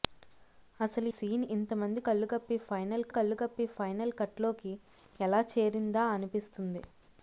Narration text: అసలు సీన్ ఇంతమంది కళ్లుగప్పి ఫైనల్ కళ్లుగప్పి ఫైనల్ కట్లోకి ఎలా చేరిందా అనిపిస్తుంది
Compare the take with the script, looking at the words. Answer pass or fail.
pass